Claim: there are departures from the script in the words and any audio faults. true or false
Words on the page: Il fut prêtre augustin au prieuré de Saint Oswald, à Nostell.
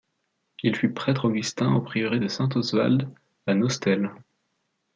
false